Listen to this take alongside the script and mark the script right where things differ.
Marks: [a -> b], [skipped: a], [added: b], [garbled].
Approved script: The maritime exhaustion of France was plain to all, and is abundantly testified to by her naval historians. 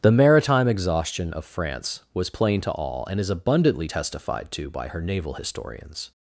The maritime exhaustion of France was plain to all, and is abundantly testified to by her naval historians.